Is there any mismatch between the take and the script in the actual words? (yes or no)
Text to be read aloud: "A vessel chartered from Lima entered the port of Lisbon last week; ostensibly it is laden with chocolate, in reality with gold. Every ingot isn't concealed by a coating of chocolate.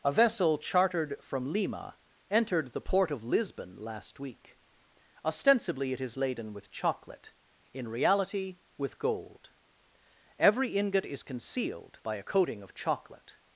yes